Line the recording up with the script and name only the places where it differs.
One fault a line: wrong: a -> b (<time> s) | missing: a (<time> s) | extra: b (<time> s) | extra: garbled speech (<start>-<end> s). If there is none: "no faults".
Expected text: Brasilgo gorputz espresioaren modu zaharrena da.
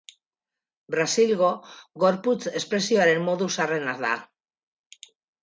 no faults